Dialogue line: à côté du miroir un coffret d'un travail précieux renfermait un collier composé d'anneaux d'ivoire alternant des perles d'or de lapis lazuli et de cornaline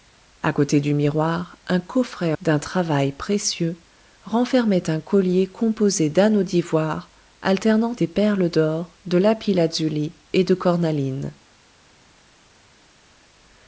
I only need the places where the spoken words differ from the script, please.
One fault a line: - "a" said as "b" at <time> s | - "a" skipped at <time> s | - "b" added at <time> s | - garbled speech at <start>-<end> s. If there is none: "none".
none